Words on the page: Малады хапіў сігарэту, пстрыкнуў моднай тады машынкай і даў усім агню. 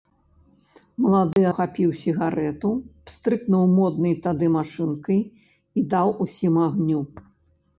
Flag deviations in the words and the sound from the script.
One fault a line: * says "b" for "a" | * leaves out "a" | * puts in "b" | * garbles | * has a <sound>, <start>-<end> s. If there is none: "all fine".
* has a dropout, 1.3-1.4 s